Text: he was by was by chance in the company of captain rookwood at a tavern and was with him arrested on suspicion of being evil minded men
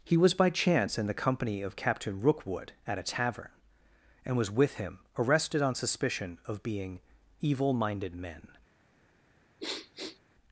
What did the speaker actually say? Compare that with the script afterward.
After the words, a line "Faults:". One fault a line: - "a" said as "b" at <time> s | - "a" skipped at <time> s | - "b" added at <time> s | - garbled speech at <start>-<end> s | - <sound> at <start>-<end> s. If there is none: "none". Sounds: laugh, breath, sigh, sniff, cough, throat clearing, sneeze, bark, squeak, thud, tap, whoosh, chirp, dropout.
he was by chance in the company of captain rookwood at a tavern and was with him arrested on suspicion of being evil minded men
Faults:
- "was by" skipped at 0.5 s
- sniff at 9.6-10.2 s